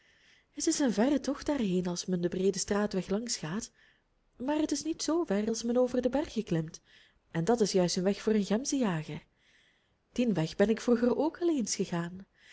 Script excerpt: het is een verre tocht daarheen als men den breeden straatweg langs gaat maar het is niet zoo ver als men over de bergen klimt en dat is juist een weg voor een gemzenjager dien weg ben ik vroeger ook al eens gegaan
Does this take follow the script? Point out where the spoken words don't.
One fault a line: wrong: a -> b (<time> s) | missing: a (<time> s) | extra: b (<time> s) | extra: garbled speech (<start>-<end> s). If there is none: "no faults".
no faults